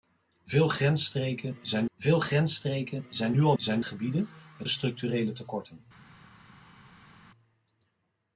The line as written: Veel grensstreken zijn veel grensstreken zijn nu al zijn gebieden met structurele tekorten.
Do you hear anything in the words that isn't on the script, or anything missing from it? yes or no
no